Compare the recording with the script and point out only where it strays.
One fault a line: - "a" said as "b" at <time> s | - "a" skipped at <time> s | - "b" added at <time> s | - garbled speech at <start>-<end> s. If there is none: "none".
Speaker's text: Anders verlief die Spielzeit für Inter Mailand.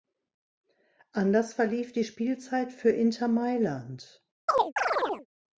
none